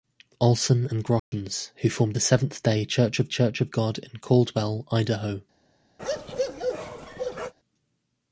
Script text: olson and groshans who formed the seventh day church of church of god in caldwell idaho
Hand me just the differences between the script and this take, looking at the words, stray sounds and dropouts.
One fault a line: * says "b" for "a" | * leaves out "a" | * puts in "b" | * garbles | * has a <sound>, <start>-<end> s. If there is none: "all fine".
* has a dropout, 1.2-1.3 s
* has a bark, 6.0-7.5 s